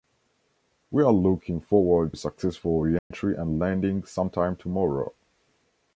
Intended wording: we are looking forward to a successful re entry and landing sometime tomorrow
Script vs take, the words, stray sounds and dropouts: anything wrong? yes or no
yes